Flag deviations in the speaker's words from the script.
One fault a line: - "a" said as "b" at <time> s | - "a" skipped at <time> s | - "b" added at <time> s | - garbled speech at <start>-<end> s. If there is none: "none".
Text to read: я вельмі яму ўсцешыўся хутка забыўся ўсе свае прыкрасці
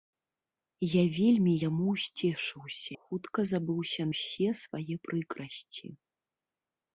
none